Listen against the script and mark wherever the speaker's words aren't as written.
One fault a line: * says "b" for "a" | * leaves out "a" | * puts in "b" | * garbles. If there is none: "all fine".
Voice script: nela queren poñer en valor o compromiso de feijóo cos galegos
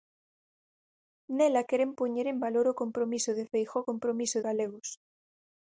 * says "compromiso" for "cos"